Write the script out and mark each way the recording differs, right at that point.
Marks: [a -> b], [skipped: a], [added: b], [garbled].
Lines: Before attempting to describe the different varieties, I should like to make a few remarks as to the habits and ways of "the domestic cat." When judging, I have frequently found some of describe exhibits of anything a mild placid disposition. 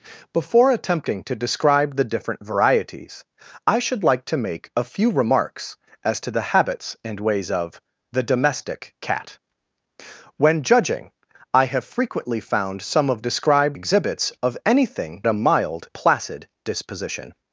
Before attempting to describe the different varieties, I should like to make a few remarks as to the habits and ways of "the domestic cat." When judging, I have frequently found some of describe exhibits of anything a mild placid disposition.